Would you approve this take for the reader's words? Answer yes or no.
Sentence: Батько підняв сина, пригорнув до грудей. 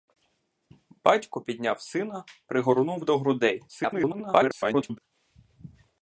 no